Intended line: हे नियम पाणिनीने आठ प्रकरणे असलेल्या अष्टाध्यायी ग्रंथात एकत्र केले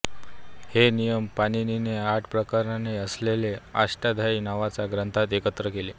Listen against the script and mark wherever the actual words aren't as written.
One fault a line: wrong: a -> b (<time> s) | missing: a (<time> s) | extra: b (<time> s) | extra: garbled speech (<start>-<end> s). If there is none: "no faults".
extra: नावाच्या (4.4 s)